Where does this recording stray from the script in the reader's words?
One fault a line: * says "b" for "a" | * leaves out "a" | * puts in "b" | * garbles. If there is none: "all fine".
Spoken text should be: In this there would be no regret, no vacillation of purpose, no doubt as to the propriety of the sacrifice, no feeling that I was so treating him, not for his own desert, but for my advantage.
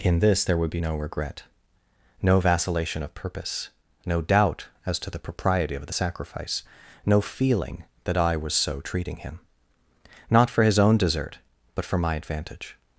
all fine